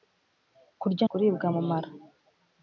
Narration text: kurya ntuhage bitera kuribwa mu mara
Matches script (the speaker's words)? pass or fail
fail